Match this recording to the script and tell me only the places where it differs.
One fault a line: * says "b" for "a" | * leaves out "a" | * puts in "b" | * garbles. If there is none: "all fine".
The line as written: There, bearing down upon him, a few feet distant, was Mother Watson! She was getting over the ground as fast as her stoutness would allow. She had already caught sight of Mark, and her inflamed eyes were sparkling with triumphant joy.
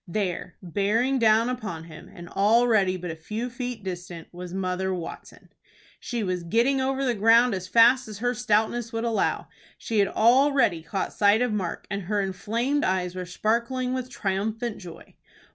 * puts in "and already but"